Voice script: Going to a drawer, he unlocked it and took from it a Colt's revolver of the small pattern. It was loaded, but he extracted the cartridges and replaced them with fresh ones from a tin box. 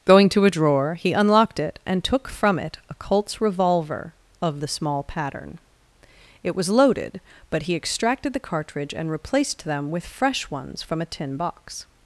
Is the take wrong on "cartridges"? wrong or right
wrong